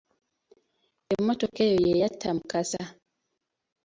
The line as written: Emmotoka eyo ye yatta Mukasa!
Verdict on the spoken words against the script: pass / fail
pass